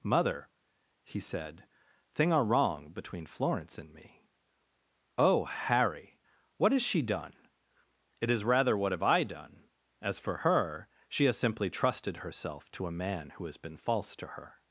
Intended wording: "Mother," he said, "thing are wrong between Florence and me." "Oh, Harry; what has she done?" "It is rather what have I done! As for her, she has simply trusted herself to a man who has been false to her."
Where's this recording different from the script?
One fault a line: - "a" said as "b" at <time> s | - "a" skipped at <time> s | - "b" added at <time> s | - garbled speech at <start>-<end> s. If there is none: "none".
none